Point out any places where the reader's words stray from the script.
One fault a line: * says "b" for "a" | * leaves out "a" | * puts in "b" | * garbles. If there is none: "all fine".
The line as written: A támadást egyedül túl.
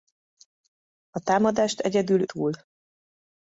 all fine